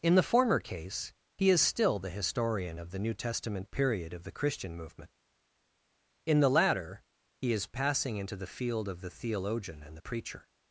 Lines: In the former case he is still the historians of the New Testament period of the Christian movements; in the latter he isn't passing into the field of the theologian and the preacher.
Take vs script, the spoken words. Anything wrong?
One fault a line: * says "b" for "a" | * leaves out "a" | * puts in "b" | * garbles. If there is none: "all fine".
* says "historian" for "historians"
* says "movement" for "movements"
* says "is" for "isn't"